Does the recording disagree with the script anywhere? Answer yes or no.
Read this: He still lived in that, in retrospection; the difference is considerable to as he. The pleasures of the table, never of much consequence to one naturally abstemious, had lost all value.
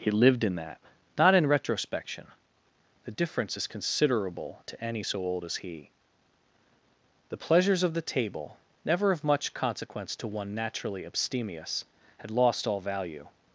yes